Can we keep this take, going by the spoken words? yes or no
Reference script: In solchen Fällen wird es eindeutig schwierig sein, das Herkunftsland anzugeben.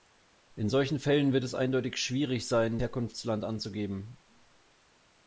no